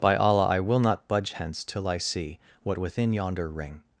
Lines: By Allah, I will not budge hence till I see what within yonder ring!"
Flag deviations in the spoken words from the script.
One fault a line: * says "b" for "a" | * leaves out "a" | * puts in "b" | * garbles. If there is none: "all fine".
all fine